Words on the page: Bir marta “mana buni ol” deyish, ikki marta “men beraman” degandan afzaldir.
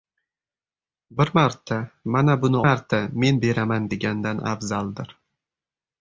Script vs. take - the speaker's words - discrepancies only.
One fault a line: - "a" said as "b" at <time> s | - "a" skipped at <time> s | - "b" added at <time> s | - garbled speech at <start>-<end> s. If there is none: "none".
- "ol deyish ikki" skipped at 2.6 s